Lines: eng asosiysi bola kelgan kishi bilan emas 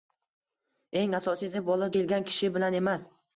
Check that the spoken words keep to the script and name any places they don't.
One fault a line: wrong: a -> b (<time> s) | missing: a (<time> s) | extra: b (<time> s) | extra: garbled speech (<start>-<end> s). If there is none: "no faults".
no faults